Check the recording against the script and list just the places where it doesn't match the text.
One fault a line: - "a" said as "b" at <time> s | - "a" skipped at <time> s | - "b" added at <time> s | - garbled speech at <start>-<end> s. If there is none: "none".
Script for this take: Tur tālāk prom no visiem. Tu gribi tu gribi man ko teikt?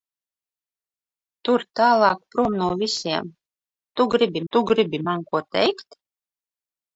none